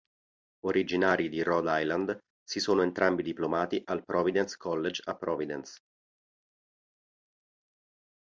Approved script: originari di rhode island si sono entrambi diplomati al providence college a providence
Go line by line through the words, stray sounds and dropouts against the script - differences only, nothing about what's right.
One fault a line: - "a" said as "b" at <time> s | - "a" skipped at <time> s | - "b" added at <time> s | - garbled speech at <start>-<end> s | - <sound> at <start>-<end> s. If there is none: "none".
none